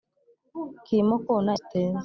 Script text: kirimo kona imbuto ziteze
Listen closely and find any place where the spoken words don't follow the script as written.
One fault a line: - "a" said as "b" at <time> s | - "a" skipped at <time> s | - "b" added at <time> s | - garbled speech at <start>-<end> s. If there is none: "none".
- "imbuto" skipped at 1.5 s